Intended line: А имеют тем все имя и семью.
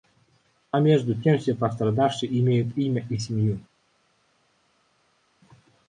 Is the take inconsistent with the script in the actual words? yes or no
yes